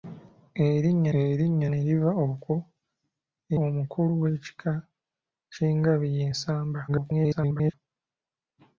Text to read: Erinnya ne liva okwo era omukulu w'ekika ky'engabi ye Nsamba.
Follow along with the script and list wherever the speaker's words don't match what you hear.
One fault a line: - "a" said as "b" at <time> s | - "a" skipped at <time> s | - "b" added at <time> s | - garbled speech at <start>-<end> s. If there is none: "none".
- "erinnya" added at 1.2 s
- "era" skipped at 2.5 s
- garbled speech at 6.9-7.7 s